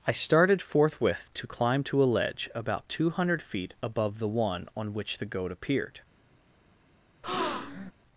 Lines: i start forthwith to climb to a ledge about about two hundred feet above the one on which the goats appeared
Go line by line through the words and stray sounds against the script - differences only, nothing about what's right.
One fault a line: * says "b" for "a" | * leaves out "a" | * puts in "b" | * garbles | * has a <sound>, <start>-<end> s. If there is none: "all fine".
* says "started" for "start"
* leaves out "about"
* says "goat" for "goats"
* has a breath, 7.2-7.9 s